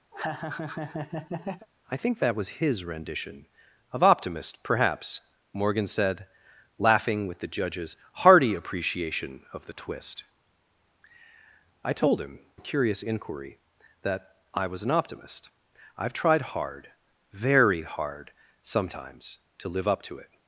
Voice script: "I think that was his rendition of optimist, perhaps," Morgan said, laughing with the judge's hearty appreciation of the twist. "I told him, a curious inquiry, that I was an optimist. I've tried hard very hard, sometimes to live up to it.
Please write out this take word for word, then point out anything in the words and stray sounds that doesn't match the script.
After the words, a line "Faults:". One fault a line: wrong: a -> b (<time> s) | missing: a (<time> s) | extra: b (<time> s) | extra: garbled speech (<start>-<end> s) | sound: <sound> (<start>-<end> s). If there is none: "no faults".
"I think that was his rendition of optimist, perhaps," Morgan said, laughing with the judge's hearty appreciation of the twist. "I told him, a curious inquiry, that I was an optimist. I've tried hard very hard, sometimes to live up to it.
Faults:
sound: laugh (0.1-1.7 s)